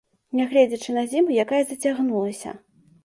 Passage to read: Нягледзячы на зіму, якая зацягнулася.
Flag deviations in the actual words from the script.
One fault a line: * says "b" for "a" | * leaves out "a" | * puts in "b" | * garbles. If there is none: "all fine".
all fine